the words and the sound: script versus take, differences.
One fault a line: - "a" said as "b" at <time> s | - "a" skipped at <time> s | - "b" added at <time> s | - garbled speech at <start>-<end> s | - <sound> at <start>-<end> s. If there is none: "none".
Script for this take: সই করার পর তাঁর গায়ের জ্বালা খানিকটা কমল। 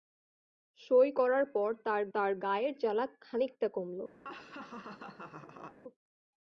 - "তাঁর" added at 2.1 s
- laugh at 4.2-5.8 s